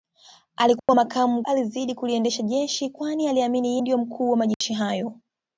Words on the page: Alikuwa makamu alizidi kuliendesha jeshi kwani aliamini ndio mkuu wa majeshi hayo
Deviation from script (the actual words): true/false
false